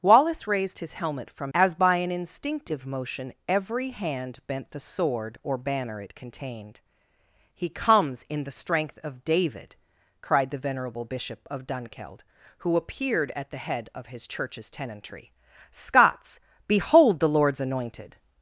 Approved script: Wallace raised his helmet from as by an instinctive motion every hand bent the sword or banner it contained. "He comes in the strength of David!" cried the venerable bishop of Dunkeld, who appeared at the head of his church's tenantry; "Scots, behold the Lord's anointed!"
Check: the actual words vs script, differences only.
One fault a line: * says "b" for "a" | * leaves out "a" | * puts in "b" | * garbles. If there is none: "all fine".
all fine